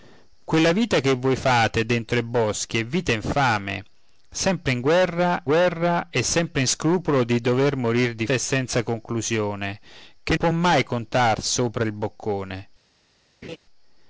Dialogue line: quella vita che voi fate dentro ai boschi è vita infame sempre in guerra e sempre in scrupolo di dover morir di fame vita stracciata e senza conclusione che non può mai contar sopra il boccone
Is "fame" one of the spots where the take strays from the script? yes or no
yes